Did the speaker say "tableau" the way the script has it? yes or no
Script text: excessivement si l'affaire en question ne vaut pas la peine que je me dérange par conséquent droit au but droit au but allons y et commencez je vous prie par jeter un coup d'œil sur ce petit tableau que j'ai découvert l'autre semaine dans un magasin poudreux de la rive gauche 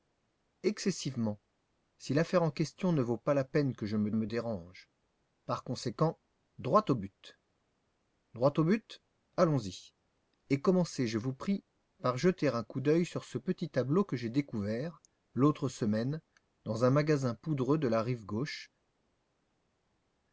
yes